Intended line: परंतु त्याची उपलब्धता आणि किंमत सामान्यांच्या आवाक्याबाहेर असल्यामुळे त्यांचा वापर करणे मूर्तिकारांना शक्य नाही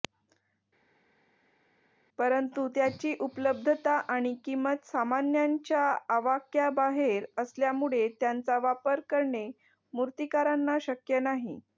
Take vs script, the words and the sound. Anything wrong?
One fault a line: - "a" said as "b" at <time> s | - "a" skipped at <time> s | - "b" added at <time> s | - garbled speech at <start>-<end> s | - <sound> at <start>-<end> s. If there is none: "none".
none